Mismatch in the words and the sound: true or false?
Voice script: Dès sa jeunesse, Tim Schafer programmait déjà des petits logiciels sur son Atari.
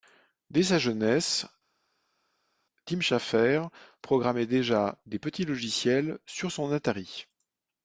false